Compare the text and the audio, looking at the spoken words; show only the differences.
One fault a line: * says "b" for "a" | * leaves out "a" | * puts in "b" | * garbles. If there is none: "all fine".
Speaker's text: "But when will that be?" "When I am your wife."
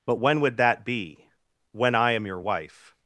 * says "would" for "will"